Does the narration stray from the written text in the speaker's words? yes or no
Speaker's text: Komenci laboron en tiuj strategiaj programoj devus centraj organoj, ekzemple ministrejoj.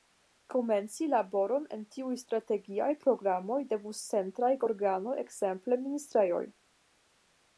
no